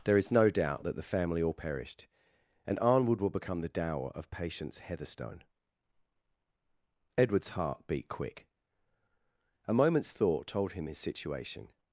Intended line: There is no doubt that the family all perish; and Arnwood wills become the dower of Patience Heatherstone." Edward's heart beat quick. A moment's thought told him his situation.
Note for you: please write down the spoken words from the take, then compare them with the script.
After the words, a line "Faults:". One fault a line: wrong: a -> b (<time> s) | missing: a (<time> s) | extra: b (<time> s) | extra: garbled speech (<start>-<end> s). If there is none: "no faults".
There is no doubt that the family all perished; and Arnwood will become the dower of Patience Heatherstone." Edward's heart beat quick. A moment's thought told him his situation.
Faults:
wrong: perish -> perished (1.5 s)
wrong: wills -> will (3.2 s)